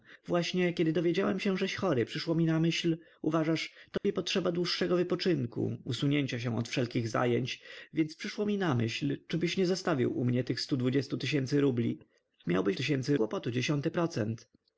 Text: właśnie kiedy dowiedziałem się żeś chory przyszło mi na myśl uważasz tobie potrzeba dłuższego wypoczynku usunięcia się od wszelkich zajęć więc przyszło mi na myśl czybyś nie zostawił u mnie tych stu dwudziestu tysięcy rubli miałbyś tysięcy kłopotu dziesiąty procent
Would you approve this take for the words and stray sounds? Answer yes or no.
no